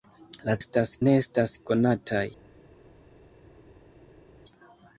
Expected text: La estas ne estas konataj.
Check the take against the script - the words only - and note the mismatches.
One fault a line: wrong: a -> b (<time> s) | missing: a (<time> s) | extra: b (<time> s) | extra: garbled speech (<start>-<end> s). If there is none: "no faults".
no faults